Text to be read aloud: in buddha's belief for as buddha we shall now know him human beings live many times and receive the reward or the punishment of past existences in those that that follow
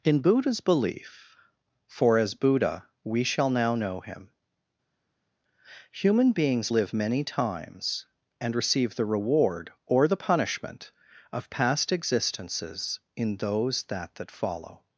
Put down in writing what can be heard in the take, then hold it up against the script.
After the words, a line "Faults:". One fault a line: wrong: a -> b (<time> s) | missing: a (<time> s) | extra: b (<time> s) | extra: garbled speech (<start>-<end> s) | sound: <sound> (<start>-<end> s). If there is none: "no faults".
in buddha's belief for as buddha we shall now know him human beings live many times and receive the reward or the punishment of past existences in those that that follow
Faults:
no faults